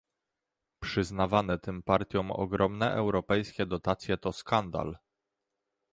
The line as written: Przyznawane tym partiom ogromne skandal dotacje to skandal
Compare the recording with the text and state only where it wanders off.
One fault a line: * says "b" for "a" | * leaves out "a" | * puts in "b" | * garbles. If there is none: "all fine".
* says "europejskie" for "skandal"